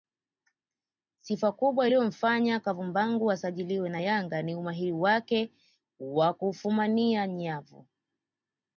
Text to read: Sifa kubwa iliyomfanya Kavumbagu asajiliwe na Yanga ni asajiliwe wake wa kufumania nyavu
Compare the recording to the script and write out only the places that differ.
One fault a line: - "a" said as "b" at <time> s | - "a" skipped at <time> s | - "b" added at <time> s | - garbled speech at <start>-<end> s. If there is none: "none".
- "asajiliwe" said as "umahiri" at 4.5 s